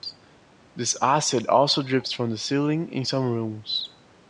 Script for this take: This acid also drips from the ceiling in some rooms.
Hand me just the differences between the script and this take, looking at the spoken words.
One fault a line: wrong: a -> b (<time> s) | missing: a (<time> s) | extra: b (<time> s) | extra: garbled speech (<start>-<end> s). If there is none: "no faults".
no faults